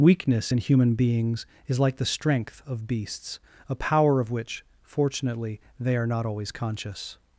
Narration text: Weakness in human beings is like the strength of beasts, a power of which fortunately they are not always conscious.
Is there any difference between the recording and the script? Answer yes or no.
no